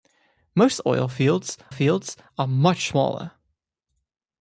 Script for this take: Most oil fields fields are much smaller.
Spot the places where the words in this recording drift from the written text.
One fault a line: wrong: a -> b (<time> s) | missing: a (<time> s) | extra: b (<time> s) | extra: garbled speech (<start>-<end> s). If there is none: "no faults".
no faults